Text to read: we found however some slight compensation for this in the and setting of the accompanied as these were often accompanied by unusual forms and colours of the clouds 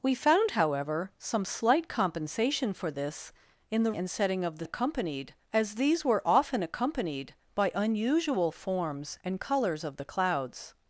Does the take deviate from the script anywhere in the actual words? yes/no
no